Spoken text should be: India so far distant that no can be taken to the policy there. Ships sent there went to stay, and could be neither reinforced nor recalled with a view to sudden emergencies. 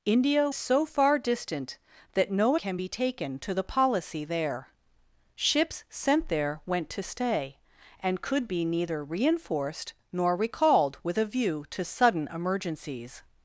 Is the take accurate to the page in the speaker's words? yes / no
yes